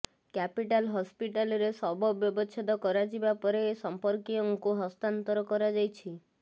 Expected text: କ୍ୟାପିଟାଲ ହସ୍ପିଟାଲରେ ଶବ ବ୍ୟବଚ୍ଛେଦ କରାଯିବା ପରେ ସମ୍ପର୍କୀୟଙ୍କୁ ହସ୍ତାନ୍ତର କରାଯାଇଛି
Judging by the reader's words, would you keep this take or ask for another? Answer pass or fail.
pass